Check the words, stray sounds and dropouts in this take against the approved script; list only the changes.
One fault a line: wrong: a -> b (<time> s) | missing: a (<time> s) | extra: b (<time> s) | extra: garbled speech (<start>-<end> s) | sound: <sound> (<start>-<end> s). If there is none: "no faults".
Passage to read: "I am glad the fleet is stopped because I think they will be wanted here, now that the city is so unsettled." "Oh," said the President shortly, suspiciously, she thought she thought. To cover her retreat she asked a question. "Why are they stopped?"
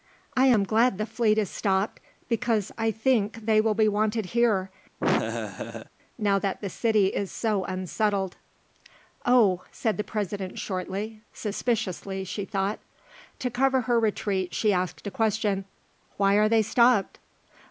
sound: laugh (5.0-5.9 s)
missing: she thought (12.8 s)